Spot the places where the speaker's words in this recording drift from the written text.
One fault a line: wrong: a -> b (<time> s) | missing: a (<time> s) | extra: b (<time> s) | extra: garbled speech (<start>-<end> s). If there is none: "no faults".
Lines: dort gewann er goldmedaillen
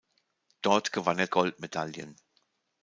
no faults